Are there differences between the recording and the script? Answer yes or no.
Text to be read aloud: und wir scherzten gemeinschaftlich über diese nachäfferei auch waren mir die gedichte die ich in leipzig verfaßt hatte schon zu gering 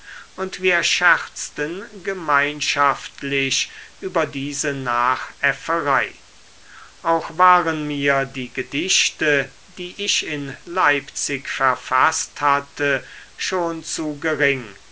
no